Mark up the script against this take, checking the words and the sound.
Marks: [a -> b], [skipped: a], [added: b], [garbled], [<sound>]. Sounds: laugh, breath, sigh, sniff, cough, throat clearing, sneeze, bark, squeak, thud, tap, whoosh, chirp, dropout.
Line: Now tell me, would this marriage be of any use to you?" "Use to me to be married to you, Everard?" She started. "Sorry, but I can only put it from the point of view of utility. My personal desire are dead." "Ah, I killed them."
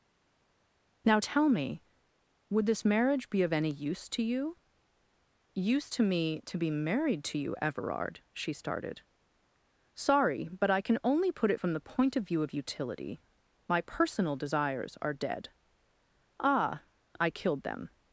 Now tell me, would this marriage be of any use to you?" "Use to me to be married to you, Everard?" She started. "Sorry, but I can only put it from the point of view of utility. My personal [desire -> desires] are dead." "Ah, I killed them."